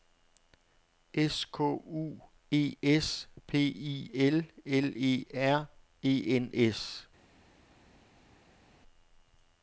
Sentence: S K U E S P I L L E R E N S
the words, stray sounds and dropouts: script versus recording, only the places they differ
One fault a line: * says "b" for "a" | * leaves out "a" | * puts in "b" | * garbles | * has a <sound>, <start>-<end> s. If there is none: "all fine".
all fine